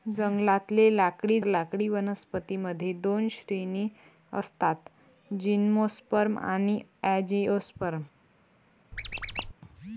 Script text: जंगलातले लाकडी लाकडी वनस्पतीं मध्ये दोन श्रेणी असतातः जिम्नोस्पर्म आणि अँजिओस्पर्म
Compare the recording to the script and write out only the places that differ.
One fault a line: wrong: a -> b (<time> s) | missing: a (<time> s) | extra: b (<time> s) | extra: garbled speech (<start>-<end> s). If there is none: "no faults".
no faults